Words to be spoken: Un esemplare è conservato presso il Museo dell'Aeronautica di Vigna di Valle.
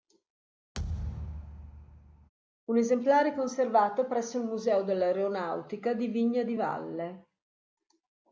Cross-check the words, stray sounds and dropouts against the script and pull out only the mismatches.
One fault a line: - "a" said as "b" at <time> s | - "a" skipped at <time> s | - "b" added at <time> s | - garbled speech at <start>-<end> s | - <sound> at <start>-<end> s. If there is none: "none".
- thud at 0.7-2.3 s